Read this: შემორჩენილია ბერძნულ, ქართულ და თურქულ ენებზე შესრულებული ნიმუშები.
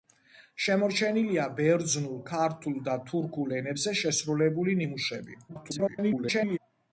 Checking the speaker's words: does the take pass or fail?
fail